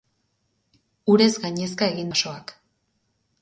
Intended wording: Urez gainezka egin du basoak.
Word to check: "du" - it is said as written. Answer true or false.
false